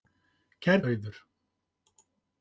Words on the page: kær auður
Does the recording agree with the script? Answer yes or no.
yes